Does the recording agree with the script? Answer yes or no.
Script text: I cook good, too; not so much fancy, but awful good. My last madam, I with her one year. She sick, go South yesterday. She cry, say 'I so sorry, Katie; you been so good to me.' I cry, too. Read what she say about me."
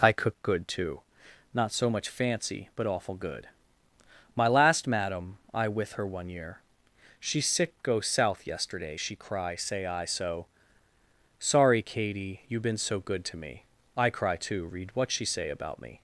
yes